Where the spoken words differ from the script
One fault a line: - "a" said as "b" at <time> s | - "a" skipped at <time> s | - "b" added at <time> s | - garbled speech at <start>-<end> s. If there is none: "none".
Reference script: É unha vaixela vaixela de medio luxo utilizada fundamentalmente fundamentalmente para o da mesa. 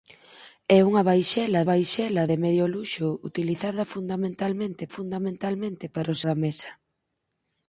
none